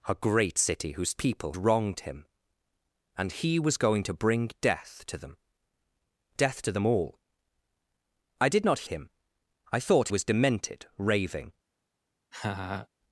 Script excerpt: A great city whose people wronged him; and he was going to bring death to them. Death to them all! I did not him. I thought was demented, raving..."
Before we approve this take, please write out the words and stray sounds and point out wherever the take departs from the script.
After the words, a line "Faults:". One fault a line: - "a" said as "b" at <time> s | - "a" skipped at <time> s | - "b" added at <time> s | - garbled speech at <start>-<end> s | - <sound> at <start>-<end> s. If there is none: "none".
A great city whose people wronged him; and he was going to bring death to them. Death to them all! I did not him. I thought was demented, raving..."
Faults:
- laugh at 12.3-12.9 s